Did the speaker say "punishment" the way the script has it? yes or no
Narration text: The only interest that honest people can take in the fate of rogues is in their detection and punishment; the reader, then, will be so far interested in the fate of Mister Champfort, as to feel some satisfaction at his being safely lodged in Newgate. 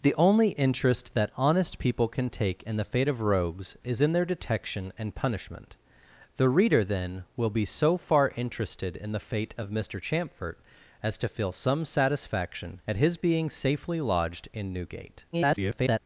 yes